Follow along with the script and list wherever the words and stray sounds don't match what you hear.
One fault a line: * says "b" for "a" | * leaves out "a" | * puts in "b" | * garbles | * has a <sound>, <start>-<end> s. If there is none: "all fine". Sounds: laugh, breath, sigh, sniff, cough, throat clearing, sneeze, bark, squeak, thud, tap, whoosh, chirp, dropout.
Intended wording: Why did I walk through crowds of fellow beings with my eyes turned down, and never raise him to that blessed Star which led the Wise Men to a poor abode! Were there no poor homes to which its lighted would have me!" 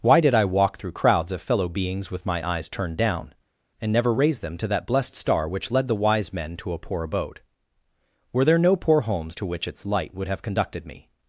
* says "them" for "him"
* says "light" for "lighted"
* puts in "conducted"